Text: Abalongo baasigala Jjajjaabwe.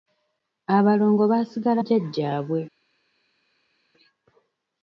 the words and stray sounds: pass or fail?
pass